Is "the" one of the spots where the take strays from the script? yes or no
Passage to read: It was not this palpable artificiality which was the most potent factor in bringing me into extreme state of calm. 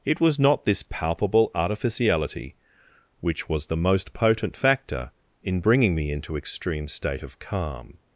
no